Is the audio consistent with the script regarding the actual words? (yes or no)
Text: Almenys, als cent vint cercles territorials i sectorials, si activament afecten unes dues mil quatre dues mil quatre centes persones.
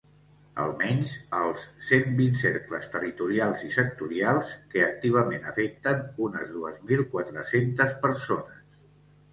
no